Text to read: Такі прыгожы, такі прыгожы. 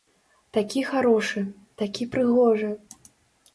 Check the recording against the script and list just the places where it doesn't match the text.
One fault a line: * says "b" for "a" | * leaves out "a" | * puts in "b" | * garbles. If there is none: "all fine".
* says "харошы" for "прыгожы"